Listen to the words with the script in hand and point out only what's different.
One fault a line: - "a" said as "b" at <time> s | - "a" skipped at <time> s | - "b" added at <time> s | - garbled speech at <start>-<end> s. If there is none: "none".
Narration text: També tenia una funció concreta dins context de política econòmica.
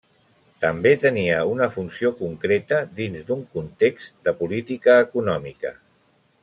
- "d'un" added at 3.3 s